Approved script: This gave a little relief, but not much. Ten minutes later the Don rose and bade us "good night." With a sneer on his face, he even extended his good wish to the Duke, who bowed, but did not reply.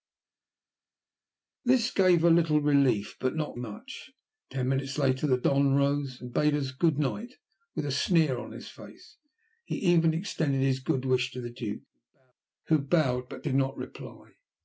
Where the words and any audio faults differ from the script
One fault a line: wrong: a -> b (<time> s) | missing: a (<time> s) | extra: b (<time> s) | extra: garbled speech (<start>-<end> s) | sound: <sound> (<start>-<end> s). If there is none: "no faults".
no faults